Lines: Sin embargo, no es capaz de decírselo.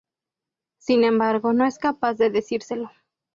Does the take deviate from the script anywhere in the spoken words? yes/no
no